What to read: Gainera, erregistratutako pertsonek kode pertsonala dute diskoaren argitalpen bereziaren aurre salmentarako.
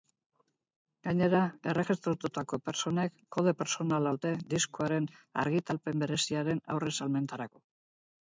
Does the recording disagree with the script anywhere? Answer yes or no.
no